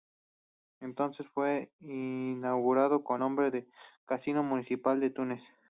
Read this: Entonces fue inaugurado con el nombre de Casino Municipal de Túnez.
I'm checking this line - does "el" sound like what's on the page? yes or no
no